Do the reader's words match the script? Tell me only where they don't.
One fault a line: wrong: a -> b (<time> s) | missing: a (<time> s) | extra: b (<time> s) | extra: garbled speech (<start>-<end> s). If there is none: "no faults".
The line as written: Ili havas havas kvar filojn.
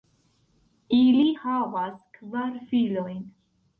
missing: havas (2.0 s)